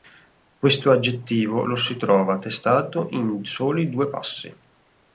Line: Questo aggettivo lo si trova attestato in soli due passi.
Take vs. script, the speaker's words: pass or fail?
pass